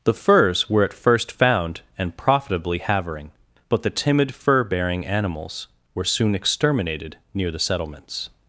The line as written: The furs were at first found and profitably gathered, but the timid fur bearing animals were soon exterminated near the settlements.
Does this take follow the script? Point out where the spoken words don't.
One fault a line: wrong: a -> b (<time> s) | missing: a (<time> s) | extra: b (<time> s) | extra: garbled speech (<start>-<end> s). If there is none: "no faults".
wrong: gathered -> havering (2.8 s)